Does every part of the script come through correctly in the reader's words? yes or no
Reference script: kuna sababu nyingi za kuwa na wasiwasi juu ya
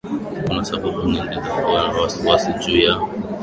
yes